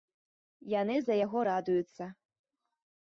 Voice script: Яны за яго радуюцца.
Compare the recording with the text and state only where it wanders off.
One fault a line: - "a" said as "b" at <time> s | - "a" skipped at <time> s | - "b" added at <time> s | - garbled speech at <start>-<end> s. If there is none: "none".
none